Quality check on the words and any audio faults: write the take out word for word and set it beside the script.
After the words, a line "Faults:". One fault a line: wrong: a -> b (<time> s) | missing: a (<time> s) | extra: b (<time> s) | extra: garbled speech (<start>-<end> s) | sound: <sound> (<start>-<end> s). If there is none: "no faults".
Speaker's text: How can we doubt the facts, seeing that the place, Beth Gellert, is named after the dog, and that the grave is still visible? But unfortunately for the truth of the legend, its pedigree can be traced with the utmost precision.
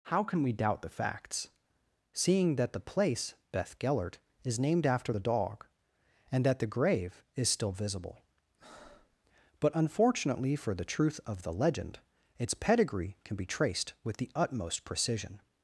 How can we doubt the facts, seeing that the place, Beth Gellert, is named after the dog, and that the grave is still visible? But unfortunately for the truth of the legend, its pedigree can be traced with the utmost precision.
Faults:
sound: breath (8.6-9.2 s)